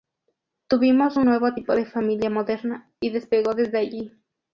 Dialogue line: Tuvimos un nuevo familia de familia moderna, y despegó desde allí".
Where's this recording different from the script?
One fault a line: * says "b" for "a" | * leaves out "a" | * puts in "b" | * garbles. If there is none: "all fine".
* says "tipo" for "familia"